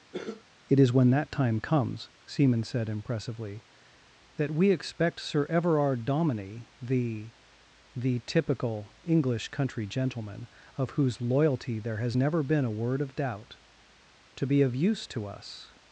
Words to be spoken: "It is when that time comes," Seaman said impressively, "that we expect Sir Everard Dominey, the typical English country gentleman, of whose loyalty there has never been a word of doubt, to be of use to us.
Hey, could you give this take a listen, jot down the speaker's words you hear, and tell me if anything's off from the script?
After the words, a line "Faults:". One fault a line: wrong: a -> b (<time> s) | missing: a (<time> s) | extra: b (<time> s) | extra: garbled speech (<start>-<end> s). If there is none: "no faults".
"It is when that time comes," Seaman said impressively, "that we expect Sir Everard Dominey, the the typical English country gentleman, of whose loyalty there has never been a word of doubt, to be of use to us.
Faults:
extra: the (7.9 s)